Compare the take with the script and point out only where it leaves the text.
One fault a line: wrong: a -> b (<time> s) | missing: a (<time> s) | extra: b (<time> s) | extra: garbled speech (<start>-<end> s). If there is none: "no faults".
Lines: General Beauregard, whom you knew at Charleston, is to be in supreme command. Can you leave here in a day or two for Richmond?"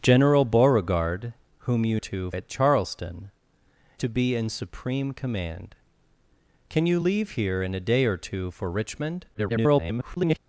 wrong: knew -> two (1.9 s)
missing: is (3.3 s)
extra: garbled speech (9.3-10.4 s)